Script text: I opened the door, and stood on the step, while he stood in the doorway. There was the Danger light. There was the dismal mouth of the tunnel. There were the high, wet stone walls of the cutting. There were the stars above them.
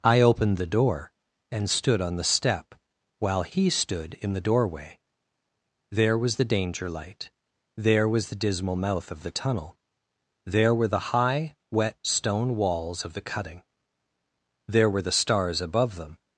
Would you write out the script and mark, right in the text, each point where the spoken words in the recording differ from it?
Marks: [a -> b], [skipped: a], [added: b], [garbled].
I opened the door, and stood on the step, while he stood in the doorway. There was the Danger light. There was the dismal mouth of the tunnel. There were the high, wet stone walls of the cutting. There were the stars above them.